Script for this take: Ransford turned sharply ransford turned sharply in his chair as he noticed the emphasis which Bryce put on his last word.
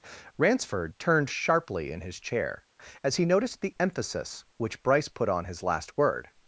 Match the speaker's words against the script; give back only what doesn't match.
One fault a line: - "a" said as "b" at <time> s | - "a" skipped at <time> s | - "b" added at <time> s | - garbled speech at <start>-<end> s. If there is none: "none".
- "ransford turned sharply" skipped at 1.9 s